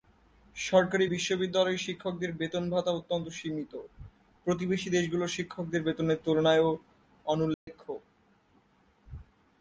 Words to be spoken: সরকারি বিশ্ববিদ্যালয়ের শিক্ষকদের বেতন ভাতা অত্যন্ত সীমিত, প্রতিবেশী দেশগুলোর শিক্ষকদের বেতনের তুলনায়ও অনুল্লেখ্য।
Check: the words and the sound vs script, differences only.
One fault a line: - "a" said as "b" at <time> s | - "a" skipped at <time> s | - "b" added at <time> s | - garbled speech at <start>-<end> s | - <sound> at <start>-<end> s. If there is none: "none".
- dropout at 7.5-7.7 s